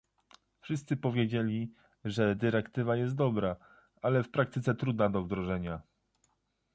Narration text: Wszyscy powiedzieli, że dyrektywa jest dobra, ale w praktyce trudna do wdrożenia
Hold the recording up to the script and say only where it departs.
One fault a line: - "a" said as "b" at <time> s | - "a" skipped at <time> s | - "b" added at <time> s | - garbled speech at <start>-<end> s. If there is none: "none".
none